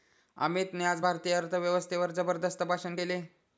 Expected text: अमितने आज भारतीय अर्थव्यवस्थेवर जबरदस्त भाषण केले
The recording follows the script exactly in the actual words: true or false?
true